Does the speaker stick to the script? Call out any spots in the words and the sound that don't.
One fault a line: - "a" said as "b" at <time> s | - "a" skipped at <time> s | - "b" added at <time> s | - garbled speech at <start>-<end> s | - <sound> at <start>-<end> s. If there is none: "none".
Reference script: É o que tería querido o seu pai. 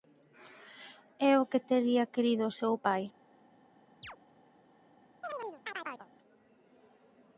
- chirp at 4.0-4.2 s
- chirp at 5.2-6.1 s